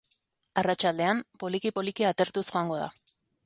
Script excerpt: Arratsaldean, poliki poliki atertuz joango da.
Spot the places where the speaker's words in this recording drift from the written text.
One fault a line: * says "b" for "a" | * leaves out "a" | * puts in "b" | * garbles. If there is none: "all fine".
all fine